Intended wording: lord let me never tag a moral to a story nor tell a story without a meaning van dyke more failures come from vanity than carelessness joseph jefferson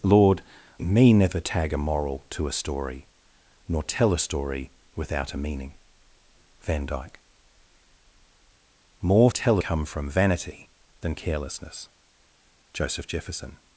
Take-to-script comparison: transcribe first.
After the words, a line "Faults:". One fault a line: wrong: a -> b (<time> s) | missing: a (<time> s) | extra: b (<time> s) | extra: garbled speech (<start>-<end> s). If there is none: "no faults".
lord me never tag a moral to a story nor tell a story without a meaning van dyke more tell come from vanity than carelessness joseph jefferson
Faults:
missing: let (0.4 s)
wrong: failures -> tell (9.3 s)